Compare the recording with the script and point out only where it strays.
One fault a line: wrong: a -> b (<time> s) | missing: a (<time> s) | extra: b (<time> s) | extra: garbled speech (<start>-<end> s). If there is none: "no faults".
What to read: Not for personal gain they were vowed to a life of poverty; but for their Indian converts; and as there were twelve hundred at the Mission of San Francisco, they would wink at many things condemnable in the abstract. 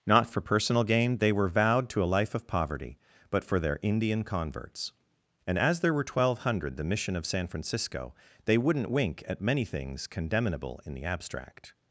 missing: at (6.8 s)
wrong: would -> wouldn't (8.6 s)